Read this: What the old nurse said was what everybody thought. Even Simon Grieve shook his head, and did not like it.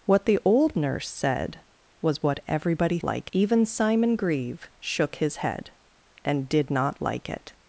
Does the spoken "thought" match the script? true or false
false